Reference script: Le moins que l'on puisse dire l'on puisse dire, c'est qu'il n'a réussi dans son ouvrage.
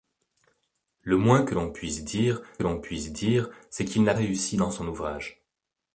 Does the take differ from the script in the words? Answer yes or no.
no